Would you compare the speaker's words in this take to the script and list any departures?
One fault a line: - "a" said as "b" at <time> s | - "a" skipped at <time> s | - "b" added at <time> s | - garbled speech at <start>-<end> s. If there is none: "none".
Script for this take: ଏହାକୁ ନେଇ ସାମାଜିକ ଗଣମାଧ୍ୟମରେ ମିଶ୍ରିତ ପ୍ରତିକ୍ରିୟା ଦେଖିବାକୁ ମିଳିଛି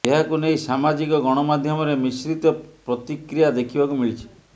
none